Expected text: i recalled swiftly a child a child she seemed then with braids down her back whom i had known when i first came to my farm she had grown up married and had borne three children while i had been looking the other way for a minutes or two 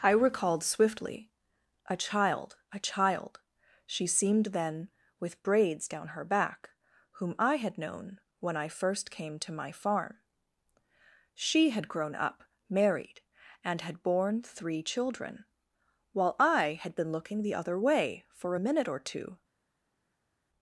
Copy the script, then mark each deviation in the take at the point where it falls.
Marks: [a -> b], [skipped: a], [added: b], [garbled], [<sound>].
i recalled swiftly a child a child she seemed then with braids down her back whom i had known when i first came to my farm she had grown up married and had borne three children while i had been looking the other way for a [minutes -> minute] or two